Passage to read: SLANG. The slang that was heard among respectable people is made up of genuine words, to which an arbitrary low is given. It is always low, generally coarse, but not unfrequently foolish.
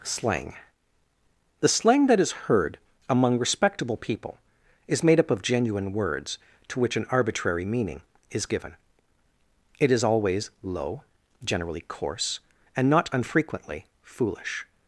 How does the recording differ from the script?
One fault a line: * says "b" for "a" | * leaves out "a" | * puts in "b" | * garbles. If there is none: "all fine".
* says "is" for "was"
* says "meaning" for "low"
* says "and" for "but"